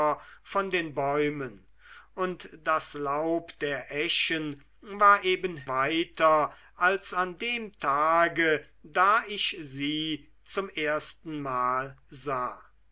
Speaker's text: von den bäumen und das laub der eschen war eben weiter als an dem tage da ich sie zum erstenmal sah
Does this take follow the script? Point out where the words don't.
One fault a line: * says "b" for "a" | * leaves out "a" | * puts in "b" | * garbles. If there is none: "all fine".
all fine